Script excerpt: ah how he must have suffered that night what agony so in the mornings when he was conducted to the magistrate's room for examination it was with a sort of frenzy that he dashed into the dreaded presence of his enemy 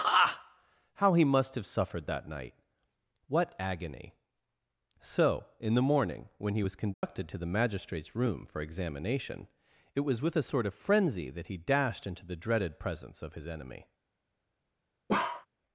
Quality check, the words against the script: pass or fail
fail